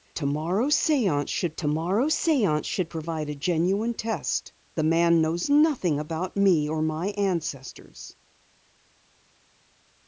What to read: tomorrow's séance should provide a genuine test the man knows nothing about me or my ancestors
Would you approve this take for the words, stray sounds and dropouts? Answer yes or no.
no